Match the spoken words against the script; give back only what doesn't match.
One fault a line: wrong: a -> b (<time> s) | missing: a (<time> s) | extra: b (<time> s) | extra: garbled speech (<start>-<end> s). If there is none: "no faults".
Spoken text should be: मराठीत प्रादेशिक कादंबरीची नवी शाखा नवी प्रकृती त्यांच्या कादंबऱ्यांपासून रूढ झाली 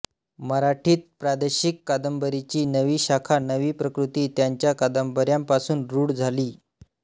no faults